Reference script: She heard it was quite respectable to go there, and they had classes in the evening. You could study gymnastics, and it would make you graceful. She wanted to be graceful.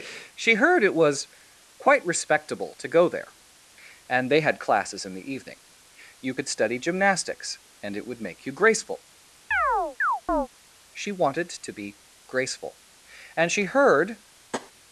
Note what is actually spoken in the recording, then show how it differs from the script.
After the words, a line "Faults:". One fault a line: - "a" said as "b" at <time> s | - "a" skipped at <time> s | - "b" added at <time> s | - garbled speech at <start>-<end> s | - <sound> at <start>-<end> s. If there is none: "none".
She heard it was quite respectable to go there, and they had classes in the evening. You could study gymnastics, and it would make you graceful. She wanted to be graceful. And she heard
Faults:
- chirp at 9.5-10.5 s
- "And she heard" added at 13.4 s
- tap at 14.5-14.7 s